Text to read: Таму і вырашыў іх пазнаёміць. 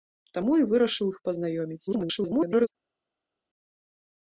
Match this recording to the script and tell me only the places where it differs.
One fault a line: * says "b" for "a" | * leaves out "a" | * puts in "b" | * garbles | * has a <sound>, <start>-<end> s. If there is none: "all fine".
* garbles